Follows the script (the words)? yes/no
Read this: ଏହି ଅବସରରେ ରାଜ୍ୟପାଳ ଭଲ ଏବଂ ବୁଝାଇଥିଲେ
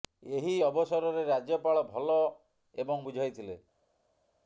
yes